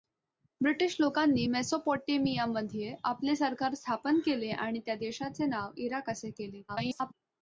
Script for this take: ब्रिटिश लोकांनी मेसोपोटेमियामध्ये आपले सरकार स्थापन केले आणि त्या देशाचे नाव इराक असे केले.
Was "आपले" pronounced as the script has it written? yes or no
yes